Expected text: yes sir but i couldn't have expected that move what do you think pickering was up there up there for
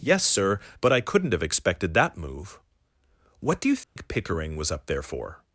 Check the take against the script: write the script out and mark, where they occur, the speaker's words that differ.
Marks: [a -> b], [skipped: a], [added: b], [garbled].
yes sir but i couldn't have expected that move what do you think pickering was up there [skipped: up there] for